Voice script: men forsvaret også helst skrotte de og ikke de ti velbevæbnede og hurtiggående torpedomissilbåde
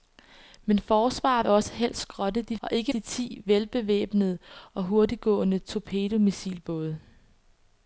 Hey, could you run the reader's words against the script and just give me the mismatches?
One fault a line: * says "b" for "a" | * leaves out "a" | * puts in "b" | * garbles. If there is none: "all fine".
all fine